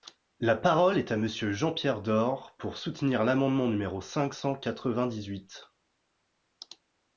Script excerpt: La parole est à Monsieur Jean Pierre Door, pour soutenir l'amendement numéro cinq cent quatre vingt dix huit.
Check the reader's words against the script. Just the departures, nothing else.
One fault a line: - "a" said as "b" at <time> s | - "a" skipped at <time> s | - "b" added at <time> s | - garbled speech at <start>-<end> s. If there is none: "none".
none